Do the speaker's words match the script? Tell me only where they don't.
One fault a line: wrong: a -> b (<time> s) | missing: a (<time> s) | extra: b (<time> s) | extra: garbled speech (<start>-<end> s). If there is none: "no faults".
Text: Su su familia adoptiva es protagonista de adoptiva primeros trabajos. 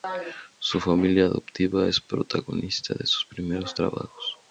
missing: su (0.8 s)
wrong: adoptiva -> sus (3.1 s)